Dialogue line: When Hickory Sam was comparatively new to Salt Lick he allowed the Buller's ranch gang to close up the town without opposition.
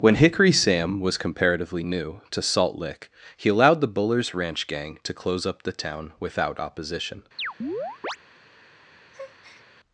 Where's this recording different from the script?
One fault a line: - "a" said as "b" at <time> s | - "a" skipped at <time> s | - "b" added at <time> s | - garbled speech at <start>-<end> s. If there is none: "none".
none